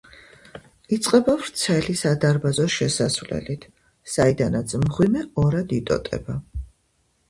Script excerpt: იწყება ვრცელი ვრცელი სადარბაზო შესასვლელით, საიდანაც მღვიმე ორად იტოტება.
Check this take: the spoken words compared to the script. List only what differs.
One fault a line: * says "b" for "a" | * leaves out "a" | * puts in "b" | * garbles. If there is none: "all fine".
* leaves out "ვრცელი"